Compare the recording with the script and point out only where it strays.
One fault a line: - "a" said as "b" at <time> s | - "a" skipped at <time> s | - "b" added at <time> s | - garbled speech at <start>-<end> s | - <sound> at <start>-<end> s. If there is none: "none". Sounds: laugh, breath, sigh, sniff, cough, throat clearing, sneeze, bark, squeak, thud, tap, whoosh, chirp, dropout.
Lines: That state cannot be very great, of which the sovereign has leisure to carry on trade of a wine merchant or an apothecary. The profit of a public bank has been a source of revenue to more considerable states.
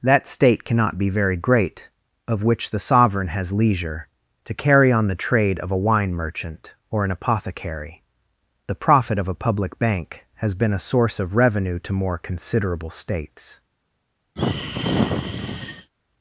- "the" added at 5.1 s
- sigh at 14.4-15.9 s